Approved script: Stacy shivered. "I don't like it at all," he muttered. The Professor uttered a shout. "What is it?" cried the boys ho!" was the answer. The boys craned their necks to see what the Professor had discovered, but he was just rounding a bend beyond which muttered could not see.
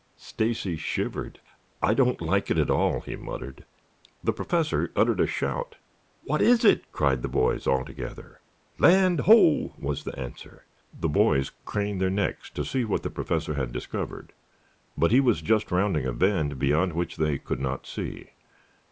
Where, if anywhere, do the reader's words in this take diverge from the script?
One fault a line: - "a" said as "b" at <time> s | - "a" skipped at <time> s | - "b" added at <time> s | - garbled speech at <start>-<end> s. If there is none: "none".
- "all together Land" added at 7.7 s
- "muttered" said as "they" at 17.2 s